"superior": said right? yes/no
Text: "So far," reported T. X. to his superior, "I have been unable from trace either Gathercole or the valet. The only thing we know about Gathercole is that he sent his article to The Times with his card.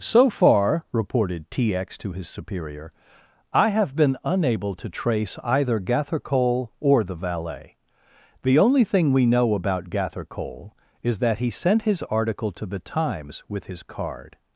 yes